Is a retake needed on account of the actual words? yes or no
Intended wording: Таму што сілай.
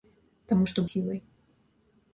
no